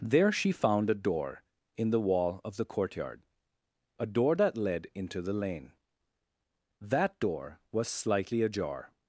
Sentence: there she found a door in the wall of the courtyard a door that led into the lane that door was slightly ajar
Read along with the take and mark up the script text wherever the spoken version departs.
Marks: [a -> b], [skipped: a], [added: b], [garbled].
there she found a door in the wall of the courtyard a door that led into the lane that door was slightly ajar